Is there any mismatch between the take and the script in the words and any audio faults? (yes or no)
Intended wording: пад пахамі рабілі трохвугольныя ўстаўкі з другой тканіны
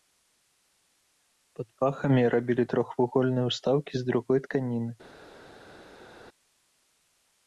no